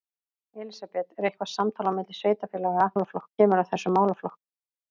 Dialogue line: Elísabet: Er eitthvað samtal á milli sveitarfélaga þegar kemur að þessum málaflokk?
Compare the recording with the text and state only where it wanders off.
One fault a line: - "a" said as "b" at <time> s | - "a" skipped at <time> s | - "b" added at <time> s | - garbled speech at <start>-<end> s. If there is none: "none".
- "þegar" said as "málaflokk" at 2.9 s